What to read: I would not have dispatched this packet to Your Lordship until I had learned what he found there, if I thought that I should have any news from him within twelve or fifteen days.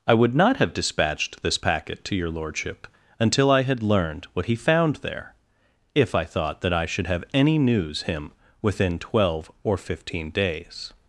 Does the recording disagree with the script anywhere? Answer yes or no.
yes